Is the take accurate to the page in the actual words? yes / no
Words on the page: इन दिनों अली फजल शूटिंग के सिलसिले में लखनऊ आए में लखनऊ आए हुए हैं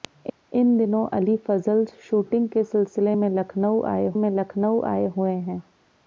yes